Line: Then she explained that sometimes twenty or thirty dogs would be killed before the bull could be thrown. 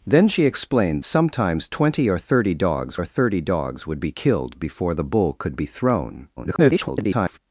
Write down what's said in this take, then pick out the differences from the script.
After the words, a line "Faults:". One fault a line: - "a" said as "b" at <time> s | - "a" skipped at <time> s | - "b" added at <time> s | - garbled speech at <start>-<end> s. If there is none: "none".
Then she explained sometimes twenty or thirty dogs or thirty dogs would be killed before the bull could be thrown. [garbled]
Faults:
- "that" skipped at 1.0 s
- "or thirty dogs" added at 2.9 s
- garbled speech at 6.4-7.4 s